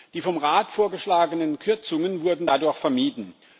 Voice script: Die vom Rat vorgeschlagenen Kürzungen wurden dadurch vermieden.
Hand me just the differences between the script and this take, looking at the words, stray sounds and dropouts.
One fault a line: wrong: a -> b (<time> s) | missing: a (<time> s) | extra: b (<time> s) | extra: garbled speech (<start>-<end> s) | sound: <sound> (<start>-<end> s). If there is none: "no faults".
no faults